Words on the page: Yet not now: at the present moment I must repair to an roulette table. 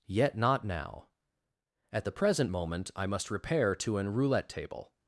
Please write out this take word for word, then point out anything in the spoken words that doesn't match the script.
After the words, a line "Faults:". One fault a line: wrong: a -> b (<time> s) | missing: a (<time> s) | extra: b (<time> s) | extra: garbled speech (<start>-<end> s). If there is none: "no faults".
Yet not now: at the present moment I must repair to an roulette table.
Faults:
no faults